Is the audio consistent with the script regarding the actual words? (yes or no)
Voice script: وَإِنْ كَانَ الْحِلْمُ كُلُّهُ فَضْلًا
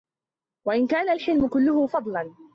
yes